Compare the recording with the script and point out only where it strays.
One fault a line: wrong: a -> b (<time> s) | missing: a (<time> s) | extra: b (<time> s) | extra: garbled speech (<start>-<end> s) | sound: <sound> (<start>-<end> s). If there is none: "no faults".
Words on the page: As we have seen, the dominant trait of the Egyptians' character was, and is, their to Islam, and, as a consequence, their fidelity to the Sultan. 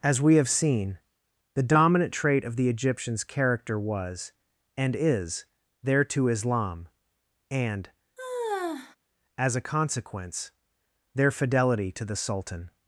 sound: sigh (8.2-9.0 s)